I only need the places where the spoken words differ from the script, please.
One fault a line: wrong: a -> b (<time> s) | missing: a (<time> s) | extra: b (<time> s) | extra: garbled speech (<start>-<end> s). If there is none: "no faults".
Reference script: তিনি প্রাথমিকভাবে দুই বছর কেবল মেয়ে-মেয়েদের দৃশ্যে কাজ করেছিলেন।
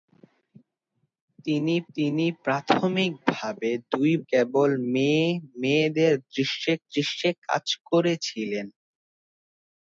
extra: তিনি (2.0 s)
missing: বছর (4.1 s)
extra: দৃশ্যে (6.9 s)